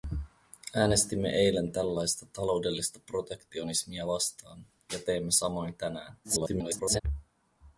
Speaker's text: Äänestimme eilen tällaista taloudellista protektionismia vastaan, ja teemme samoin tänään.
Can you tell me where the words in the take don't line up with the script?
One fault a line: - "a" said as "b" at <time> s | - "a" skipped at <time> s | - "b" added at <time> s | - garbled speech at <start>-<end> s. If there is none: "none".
- garbled speech at 6.2-7.0 s